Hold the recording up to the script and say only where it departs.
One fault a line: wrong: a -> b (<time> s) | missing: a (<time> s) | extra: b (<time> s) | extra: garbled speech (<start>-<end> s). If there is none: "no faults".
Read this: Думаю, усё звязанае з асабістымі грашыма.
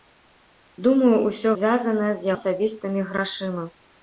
no faults